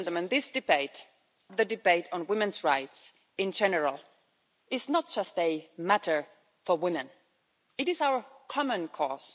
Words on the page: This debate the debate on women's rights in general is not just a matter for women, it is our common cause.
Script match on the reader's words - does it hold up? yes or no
yes